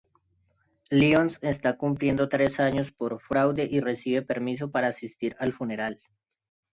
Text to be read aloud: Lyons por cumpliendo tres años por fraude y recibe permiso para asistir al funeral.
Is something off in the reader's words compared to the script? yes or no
yes